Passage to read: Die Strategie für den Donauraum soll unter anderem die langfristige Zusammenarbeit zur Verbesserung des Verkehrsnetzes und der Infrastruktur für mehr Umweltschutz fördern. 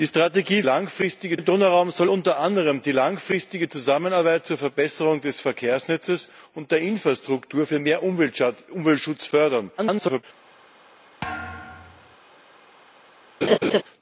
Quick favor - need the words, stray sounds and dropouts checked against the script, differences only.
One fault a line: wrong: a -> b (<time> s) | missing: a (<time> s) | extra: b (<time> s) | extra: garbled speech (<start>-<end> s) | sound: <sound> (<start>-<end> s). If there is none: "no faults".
wrong: für -> langfristige (0.6 s)
extra: garbled speech (9.8-10.2 s)
sound: thud (11.2-12.2 s)
sound: laugh (13.4-13.8 s)